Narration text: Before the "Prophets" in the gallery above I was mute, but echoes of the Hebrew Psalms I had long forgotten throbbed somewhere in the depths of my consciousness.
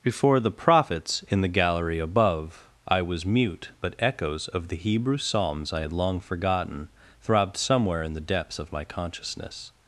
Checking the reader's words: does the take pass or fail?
pass